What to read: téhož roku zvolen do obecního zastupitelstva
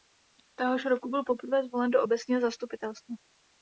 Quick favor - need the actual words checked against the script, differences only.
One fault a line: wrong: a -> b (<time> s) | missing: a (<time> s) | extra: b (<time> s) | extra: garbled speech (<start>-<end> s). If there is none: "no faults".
extra: byl poprvé (1.1 s)